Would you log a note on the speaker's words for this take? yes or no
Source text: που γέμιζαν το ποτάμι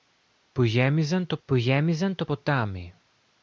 yes